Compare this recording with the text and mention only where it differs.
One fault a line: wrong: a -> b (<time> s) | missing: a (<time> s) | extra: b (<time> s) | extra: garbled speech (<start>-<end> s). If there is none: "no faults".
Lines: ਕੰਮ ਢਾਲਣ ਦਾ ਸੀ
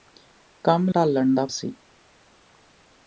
no faults